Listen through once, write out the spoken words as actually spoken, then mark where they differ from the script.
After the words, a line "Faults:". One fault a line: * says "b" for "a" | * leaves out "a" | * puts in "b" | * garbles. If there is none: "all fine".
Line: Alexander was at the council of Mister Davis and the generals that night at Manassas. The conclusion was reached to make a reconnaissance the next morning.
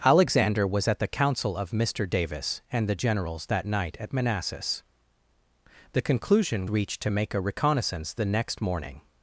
Alexander was at the council of Mister Davis and the generals that night at Manassas. The conclusion reached to make a reconnaissance the next morning.
Faults:
* leaves out "was"